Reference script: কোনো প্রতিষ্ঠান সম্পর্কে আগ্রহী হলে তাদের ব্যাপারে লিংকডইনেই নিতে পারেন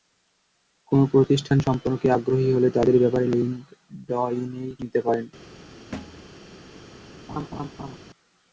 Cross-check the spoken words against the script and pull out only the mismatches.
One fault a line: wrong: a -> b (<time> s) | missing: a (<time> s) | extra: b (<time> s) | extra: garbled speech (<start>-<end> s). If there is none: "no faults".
no faults